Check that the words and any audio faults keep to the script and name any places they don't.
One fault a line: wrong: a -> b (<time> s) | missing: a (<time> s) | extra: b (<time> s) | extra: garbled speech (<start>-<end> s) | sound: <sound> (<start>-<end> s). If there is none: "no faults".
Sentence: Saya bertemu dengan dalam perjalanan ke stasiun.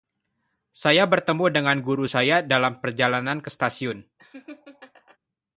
extra: guru saya (1.9 s)
sound: laugh (4.2-5.2 s)